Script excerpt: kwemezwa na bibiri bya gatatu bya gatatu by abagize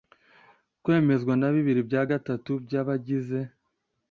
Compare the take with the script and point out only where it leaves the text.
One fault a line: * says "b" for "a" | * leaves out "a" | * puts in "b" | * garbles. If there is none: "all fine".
* leaves out "bya gatatu"